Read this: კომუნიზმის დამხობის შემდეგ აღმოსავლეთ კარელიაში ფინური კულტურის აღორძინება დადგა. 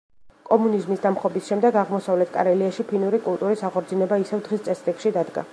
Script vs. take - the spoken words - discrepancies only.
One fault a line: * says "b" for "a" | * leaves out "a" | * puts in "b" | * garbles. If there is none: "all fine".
* puts in "ისევ დღის წესრიგში"